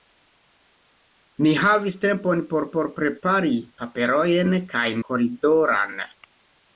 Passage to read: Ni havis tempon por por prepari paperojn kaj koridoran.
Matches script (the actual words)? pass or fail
pass